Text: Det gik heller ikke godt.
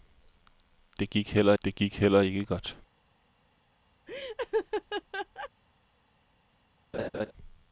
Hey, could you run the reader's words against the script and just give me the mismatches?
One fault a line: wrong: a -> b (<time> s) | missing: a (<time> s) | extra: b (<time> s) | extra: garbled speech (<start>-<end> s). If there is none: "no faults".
extra: det gik heller (1.6 s)